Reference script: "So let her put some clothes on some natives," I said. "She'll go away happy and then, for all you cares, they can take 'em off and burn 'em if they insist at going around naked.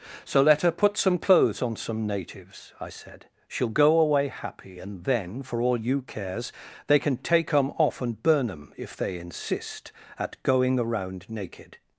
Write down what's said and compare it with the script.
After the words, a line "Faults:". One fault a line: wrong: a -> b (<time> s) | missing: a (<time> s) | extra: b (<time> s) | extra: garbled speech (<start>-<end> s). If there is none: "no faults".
"So let her put some clothes on some natives," I said. "She'll go away happy and then, for all you cares, they can take 'em off and burn 'em if they insist at going around naked.
Faults:
no faults